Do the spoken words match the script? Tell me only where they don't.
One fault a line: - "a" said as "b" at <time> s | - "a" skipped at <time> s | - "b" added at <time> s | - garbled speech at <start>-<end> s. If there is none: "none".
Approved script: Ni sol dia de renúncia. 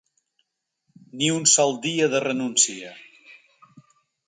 - "un" added at 1.3 s